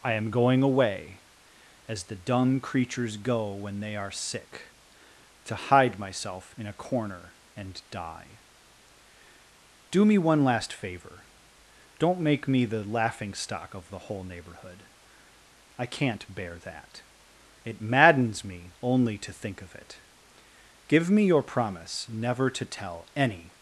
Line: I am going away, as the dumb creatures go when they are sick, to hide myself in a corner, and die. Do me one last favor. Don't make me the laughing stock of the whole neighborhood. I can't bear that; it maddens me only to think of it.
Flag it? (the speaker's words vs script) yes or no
yes